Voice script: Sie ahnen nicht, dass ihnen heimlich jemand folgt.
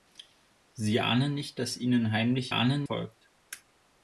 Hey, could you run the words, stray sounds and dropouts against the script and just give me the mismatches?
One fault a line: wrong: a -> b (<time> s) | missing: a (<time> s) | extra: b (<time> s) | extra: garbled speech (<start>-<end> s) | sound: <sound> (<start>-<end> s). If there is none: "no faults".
wrong: jemand -> ahnen (2.5 s)